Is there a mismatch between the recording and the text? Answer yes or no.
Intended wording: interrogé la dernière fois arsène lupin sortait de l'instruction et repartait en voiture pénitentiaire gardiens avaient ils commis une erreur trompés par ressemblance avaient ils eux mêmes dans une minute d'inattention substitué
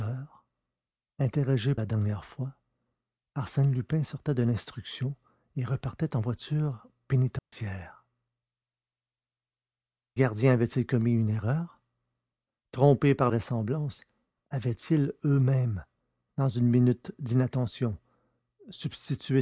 no